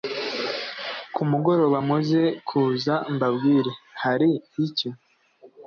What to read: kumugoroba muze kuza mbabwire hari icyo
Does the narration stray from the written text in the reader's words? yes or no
no